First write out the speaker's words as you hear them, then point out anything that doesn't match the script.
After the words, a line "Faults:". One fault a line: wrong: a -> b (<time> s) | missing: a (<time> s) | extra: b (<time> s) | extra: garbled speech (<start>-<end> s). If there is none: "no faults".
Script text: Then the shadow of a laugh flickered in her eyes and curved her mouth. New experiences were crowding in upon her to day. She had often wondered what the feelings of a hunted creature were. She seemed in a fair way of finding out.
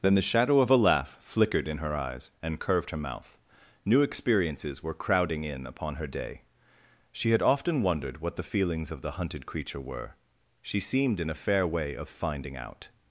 Then the shadow of a laugh flickered in her eyes and curved her mouth. New experiences were crowding in upon her day. She had often wondered what the feelings of the hunted creature were. She seemed in a fair way of finding out.
Faults:
missing: to (6.1 s)
wrong: a -> the (9.0 s)